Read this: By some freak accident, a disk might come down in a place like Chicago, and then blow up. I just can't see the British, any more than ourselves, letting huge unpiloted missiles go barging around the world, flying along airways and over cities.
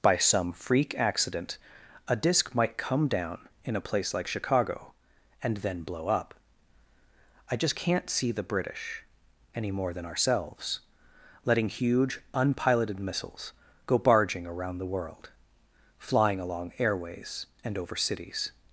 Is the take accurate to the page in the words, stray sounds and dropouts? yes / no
yes